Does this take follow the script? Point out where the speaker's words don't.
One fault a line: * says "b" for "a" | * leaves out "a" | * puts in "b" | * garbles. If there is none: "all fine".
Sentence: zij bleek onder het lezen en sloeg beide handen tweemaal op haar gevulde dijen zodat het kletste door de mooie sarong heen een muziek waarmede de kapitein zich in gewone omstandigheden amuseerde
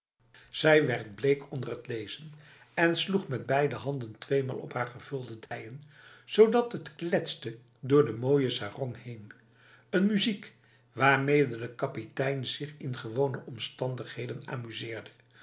* puts in "werd"
* puts in "met"